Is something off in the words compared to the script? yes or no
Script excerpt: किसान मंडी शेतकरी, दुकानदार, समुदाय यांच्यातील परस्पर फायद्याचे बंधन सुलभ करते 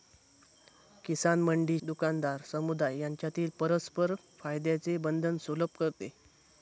yes